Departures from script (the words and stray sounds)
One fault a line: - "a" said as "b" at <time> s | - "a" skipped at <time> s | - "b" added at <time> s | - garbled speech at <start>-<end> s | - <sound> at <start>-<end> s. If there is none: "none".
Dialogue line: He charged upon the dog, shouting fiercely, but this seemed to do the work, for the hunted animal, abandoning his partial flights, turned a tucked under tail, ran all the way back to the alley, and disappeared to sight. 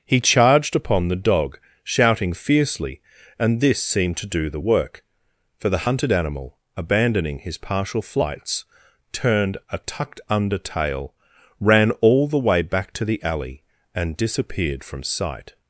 - "but" said as "and" at 3.4 s
- "to" said as "from" at 14.8 s